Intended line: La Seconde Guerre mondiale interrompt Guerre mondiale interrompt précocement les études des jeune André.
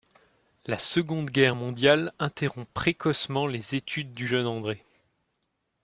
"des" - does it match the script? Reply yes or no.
no